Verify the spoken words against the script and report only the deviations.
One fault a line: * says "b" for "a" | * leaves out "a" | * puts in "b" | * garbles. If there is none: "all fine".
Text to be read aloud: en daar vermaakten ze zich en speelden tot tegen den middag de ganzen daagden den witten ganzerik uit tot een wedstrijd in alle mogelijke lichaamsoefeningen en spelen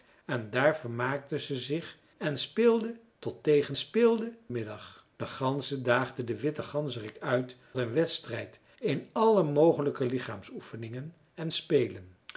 * says "speelden" for "den"
* leaves out "tot"